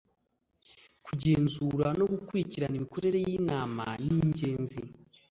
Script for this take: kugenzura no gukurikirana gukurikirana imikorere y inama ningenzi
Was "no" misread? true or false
false